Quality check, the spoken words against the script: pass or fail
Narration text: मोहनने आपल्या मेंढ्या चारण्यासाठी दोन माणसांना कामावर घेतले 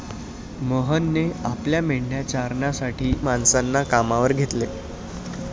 fail